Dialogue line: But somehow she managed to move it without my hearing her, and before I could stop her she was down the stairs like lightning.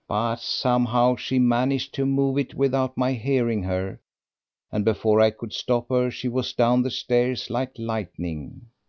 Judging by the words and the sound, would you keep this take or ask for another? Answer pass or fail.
pass